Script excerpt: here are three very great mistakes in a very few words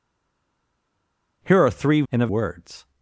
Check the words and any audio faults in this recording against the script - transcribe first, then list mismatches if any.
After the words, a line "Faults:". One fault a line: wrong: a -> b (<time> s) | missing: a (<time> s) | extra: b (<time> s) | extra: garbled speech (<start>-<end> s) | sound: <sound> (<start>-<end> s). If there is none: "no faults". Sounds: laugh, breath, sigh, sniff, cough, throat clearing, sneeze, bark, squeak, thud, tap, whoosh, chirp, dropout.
here are three in a words
Faults:
missing: very great mistakes (2.0 s)
missing: very few (2.3 s)